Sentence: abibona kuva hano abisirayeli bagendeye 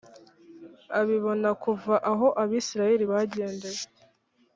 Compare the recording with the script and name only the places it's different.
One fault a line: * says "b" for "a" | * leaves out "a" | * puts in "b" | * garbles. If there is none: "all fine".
* says "aho" for "hano"